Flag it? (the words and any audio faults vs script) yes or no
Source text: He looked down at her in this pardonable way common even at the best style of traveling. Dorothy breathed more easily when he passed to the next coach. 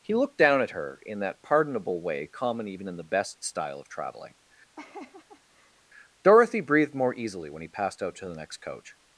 yes